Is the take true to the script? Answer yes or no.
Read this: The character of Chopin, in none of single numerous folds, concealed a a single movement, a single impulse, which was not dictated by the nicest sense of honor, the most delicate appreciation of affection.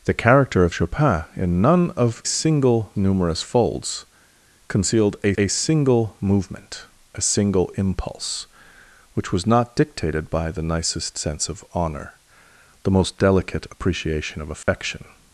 yes